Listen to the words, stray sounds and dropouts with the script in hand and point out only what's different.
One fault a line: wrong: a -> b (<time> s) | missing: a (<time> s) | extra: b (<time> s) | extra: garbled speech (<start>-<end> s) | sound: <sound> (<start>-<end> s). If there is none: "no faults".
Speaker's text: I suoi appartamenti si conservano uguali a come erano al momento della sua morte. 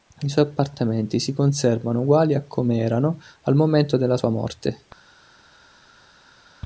no faults